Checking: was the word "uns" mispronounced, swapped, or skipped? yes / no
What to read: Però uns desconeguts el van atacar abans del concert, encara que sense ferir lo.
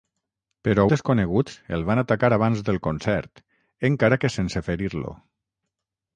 yes